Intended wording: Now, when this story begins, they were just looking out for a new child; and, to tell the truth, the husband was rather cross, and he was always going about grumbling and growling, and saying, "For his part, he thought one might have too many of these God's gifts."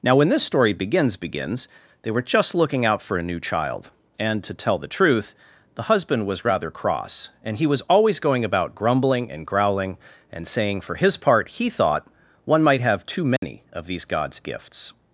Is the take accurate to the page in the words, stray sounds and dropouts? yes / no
no